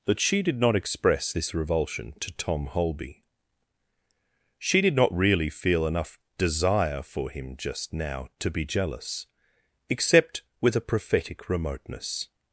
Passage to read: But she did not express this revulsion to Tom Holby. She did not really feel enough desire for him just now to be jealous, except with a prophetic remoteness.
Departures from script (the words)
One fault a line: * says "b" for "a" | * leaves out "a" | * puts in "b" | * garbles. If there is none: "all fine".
* says "That" for "But"